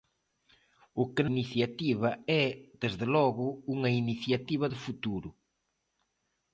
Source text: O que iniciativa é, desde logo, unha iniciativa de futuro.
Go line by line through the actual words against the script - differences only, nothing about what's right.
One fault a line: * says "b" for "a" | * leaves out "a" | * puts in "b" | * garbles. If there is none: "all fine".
all fine